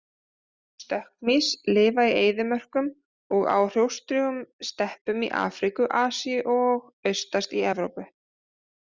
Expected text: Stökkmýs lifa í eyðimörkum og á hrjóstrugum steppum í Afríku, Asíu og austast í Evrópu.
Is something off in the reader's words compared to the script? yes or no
no